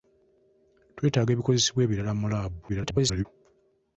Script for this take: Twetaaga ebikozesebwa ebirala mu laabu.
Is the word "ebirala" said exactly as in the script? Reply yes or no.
yes